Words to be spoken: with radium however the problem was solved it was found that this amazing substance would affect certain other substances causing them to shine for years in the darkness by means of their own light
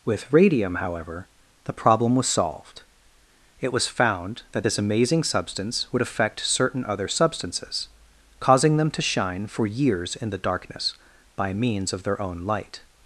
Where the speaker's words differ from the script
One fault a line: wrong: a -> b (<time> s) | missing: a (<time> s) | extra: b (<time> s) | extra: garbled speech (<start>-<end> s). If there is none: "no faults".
no faults